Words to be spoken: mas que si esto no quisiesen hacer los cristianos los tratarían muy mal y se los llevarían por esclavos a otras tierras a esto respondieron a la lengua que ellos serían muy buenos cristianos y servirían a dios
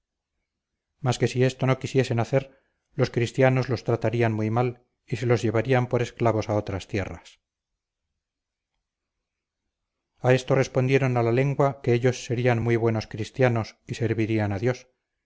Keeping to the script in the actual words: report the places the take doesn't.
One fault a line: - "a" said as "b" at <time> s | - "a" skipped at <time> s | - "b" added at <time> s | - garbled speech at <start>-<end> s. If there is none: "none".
none